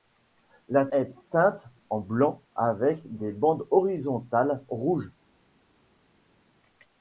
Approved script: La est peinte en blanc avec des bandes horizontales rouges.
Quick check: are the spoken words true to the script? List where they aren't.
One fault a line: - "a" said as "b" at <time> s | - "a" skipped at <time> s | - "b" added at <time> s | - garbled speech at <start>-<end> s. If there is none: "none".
none